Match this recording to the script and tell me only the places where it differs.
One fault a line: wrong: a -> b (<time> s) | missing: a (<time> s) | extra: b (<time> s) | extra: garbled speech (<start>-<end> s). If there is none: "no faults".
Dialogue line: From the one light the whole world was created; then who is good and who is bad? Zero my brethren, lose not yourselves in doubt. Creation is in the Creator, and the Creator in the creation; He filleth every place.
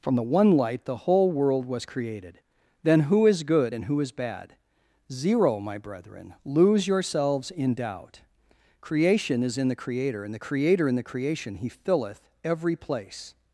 missing: not (6.9 s)